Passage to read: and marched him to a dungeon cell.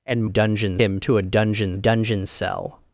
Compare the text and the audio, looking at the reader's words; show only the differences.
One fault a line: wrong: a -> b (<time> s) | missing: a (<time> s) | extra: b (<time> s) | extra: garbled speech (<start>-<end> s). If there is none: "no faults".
wrong: marched -> dungeon (0.3 s)
extra: dungeon (1.7 s)